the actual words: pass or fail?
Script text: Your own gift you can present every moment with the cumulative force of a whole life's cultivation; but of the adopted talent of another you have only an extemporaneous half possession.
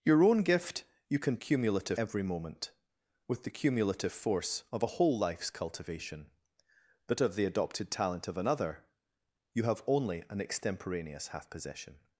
fail